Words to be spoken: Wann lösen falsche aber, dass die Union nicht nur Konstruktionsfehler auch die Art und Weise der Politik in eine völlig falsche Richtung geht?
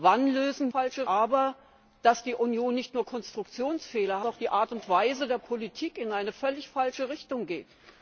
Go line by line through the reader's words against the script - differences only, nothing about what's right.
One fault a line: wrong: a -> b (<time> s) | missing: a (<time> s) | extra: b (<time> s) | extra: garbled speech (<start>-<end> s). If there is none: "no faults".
no faults